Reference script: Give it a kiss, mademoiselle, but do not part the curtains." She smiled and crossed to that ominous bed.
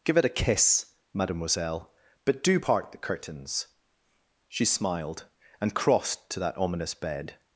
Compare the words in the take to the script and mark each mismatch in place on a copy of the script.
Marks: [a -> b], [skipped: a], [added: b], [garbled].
Give it a kiss, mademoiselle, but do [skipped: not] part the curtains." She smiled and crossed to that ominous bed.